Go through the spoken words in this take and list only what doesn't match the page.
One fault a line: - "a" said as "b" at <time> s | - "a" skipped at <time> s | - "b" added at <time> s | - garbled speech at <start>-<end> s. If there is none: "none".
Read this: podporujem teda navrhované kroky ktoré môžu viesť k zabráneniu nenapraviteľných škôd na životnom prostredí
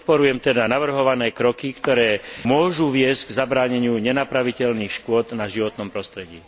none